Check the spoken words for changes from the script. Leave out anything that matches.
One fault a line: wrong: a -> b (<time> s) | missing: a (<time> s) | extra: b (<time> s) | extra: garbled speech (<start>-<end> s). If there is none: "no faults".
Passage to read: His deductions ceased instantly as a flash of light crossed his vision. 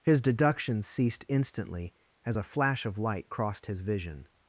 no faults